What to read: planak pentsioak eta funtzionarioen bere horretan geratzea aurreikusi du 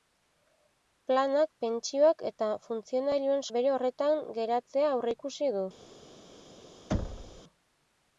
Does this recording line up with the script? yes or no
yes